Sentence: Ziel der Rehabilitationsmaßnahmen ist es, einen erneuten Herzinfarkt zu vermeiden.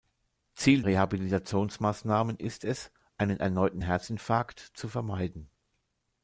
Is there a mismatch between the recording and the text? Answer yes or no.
yes